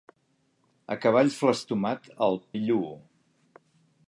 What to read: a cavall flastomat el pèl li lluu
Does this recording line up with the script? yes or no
no